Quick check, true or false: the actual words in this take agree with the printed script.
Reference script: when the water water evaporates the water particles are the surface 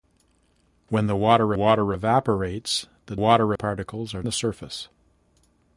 true